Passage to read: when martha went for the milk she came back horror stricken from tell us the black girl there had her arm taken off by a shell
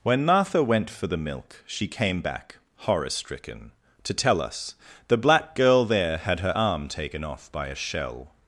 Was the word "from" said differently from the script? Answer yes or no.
yes